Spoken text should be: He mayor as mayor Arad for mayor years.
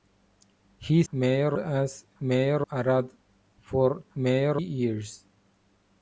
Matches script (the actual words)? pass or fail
pass